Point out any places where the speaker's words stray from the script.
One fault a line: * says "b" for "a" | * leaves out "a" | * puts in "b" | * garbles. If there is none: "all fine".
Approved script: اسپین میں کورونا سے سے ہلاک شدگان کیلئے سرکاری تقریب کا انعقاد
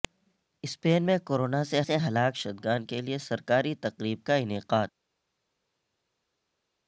all fine